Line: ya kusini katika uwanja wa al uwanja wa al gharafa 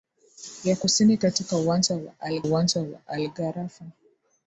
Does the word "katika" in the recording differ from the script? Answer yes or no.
no